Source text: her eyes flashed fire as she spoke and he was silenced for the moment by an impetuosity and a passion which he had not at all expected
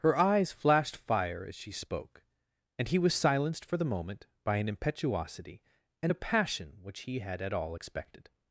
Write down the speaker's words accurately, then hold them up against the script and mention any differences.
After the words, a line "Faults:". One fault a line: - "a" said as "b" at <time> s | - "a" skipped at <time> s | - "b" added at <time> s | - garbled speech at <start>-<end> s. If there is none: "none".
her eyes flashed fire as she spoke and he was silenced for the moment by an impetuosity and a passion which he had at all expected
Faults:
- "not" skipped at 7.4 s